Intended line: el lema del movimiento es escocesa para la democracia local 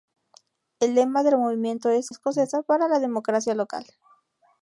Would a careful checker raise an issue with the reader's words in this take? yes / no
no